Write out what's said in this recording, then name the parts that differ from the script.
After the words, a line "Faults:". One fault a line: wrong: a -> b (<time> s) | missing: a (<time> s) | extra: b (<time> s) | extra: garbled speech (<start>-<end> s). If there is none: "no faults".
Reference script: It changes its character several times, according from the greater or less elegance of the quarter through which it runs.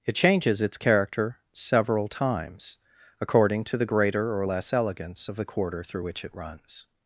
It changes its character several times, according to the greater or less elegance of the quarter through which it runs.
Faults:
wrong: from -> to (3.6 s)